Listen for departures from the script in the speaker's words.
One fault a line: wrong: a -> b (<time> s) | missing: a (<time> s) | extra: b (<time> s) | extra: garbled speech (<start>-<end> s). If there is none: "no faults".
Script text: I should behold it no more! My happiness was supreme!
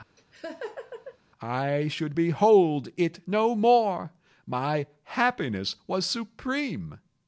no faults